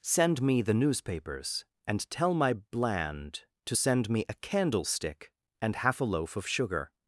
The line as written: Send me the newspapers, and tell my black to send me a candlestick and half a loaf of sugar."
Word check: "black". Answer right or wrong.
wrong